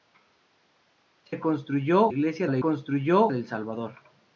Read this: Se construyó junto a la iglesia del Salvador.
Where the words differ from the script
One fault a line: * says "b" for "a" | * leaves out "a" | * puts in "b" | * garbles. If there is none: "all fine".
* says "iglesia" for "junto"
* says "construyó" for "iglesia"